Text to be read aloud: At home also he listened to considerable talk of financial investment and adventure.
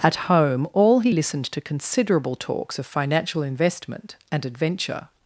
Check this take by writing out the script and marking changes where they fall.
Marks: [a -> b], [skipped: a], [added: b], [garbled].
At home [also -> all] he listened to considerable [talk -> talks] of financial investment and adventure.